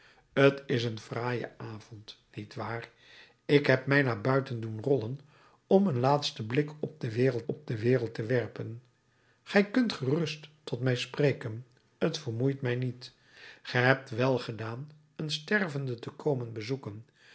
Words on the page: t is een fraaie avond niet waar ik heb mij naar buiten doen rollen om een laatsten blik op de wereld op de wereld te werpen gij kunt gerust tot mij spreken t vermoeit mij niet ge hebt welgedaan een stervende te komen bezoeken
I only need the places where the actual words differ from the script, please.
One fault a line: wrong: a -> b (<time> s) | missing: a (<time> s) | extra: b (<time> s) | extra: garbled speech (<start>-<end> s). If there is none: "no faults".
no faults